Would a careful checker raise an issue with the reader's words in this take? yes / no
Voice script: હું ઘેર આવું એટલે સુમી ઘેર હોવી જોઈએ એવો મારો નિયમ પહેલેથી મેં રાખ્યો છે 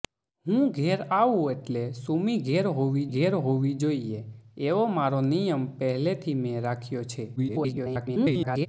yes